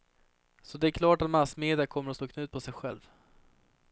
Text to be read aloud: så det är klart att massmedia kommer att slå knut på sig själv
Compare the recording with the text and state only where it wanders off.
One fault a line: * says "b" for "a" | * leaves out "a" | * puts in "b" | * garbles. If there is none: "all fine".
all fine